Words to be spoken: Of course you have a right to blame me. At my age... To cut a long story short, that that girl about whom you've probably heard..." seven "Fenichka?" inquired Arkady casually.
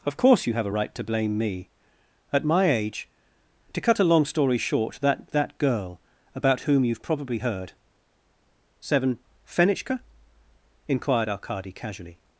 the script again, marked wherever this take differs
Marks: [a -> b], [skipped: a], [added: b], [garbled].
Of course you have a right to blame me. At my age... To cut a long story short, that that girl about whom you've probably heard..." seven "Fenichka?" inquired Arkady casually.